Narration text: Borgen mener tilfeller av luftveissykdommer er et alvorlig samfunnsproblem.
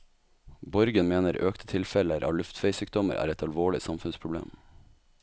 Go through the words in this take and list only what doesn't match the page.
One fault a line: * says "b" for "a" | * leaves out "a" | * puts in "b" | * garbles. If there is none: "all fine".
* puts in "økte"